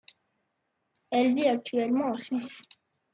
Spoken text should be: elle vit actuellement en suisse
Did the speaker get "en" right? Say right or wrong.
right